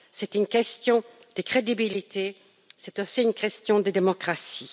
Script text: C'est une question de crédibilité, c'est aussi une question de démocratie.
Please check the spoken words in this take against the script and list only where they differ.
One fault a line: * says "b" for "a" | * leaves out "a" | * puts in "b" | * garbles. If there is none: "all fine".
all fine